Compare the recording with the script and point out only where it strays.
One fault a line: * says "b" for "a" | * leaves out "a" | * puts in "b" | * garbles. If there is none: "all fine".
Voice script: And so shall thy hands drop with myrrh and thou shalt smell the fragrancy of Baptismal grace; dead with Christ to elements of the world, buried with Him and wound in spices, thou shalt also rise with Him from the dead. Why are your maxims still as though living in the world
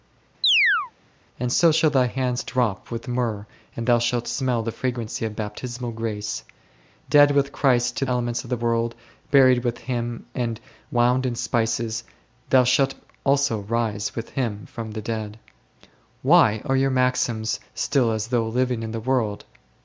all fine